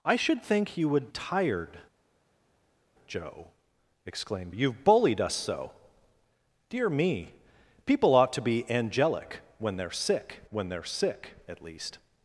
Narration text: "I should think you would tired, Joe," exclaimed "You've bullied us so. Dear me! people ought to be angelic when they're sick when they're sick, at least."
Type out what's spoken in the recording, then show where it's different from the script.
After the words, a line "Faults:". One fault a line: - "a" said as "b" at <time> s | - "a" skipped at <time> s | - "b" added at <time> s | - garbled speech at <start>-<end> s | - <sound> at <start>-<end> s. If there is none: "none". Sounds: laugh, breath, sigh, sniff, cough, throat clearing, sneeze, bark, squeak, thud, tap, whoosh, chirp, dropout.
"I should think you would tired, Joe," exclaimed "You've bullied us so. Dear me! people ought to be angelic when they're sick when they're sick, at least."
Faults:
none